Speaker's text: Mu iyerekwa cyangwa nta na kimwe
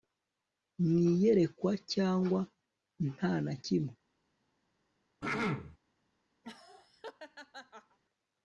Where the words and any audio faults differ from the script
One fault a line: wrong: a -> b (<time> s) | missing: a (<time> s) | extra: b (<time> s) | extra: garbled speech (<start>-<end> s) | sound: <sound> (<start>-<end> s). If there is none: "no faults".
sound: throat clearing (5.2-5.8 s)
sound: laugh (6.4-8.0 s)